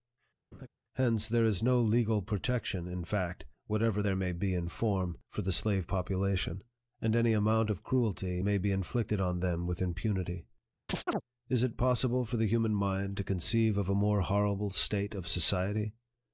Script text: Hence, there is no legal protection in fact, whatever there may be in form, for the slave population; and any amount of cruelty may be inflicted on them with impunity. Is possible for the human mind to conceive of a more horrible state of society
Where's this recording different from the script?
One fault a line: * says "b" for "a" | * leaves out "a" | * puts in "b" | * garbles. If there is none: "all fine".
* puts in "it"